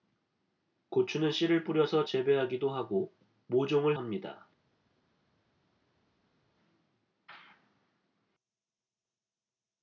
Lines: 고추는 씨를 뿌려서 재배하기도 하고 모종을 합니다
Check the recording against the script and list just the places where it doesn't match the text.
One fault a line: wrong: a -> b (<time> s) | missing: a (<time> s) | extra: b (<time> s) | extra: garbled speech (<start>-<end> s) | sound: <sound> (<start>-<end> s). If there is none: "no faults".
no faults